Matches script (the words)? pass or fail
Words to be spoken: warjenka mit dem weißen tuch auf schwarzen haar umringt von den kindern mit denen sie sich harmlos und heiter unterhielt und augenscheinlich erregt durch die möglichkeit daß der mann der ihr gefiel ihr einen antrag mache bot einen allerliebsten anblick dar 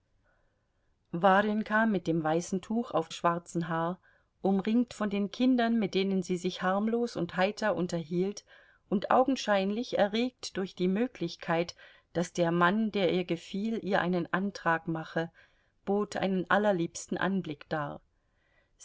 pass